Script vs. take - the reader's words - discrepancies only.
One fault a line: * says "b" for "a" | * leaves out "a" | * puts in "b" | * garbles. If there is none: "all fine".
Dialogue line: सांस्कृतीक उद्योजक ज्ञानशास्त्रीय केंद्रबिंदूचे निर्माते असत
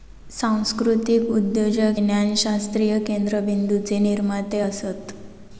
all fine